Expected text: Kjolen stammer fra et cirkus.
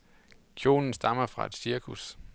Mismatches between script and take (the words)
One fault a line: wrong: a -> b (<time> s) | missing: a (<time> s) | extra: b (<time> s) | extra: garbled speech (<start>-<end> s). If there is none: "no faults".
no faults